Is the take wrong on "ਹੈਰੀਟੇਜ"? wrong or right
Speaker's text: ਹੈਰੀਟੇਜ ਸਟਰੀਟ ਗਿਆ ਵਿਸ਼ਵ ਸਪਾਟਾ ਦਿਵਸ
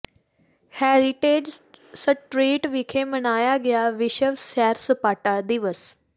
right